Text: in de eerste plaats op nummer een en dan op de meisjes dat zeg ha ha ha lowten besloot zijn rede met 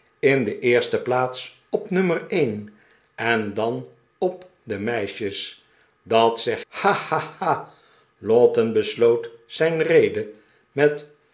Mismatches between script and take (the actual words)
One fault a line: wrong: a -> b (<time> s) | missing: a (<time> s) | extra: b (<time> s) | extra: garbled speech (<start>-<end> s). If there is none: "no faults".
no faults